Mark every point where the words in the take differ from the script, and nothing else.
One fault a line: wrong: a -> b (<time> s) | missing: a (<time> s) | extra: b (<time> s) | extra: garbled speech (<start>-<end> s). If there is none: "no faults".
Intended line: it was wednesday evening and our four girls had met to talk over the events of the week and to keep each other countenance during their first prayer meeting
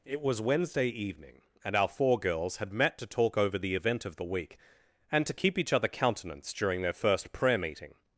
wrong: events -> event (3.7 s)